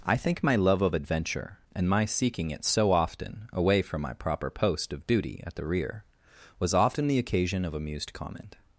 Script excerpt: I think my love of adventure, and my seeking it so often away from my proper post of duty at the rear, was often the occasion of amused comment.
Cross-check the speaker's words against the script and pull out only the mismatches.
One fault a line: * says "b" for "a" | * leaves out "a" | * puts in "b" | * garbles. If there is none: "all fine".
all fine